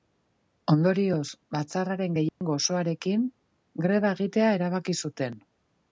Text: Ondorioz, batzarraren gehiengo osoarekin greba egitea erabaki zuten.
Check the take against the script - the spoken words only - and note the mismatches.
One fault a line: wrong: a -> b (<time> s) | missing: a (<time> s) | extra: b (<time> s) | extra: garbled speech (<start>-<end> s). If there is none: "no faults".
no faults